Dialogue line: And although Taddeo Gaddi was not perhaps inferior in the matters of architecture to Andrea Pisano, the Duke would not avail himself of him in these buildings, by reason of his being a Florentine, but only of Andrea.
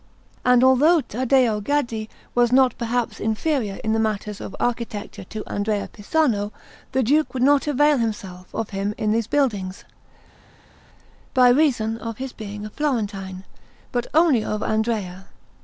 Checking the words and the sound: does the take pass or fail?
pass